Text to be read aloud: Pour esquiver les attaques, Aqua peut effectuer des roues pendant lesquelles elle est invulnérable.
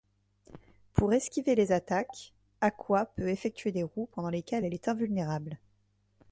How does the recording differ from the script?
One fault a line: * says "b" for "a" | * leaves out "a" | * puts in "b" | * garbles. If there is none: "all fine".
all fine